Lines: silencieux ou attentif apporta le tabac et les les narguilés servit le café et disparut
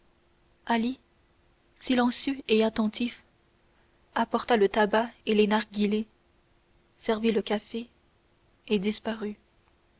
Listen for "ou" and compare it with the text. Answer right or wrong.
wrong